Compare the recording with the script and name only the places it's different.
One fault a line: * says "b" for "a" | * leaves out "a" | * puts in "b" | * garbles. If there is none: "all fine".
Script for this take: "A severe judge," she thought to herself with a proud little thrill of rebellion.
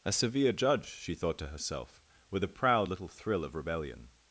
all fine